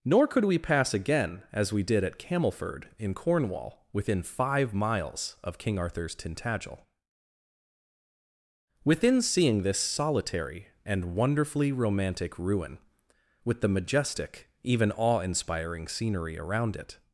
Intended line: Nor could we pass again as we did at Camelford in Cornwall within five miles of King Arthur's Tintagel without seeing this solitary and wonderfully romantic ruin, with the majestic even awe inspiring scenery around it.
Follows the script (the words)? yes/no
no